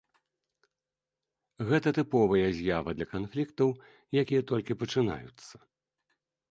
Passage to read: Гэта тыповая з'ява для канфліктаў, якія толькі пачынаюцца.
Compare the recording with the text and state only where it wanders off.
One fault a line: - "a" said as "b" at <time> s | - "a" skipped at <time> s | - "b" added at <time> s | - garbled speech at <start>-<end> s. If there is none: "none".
none